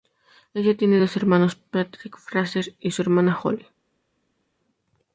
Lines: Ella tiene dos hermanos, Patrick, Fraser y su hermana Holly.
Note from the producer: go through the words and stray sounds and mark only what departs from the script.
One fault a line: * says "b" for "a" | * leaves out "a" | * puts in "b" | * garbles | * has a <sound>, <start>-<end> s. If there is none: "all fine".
all fine